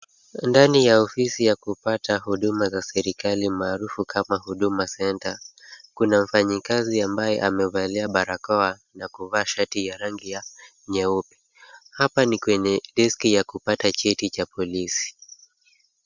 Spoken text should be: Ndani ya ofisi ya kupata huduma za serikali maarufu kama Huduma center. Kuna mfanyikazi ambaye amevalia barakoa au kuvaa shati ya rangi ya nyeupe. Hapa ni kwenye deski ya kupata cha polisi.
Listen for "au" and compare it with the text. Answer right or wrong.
wrong